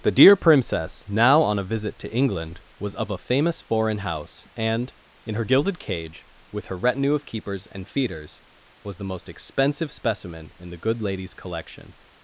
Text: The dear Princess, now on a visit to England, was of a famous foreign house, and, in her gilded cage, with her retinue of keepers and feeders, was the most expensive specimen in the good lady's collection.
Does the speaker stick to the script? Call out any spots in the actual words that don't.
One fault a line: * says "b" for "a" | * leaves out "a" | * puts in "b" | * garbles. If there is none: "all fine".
all fine